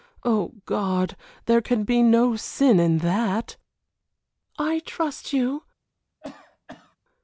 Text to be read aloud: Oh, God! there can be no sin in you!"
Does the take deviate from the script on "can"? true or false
false